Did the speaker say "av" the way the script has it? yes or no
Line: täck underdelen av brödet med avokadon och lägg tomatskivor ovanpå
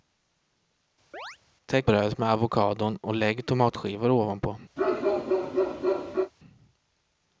no